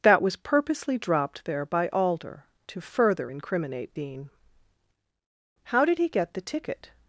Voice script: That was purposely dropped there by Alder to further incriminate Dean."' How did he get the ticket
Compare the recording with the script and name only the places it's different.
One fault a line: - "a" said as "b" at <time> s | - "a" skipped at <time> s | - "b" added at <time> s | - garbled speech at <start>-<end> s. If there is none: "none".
none